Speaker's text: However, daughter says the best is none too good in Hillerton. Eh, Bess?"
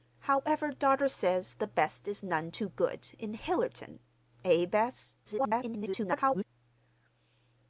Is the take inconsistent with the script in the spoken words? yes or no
yes